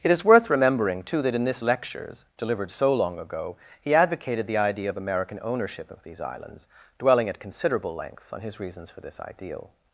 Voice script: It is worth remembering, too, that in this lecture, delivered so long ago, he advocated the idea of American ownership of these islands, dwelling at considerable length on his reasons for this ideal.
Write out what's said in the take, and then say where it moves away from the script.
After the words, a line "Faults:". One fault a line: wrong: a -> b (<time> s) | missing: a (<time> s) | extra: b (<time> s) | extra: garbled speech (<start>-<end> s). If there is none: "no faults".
It is worth remembering, too, that in this lectures, delivered so long ago, he advocated the idea of American ownership of these islands, dwelling at considerable lengths on his reasons for this ideal.
Faults:
wrong: lecture -> lectures (1.6 s)
wrong: length -> lengths (7.9 s)